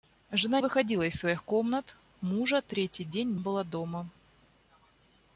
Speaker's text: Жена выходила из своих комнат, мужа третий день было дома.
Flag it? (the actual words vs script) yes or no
no